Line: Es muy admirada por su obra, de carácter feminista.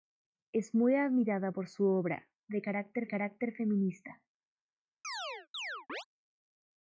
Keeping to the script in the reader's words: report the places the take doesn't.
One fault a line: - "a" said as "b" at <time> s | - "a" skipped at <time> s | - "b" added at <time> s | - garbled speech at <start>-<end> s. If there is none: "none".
- "carácter" added at 3.1 s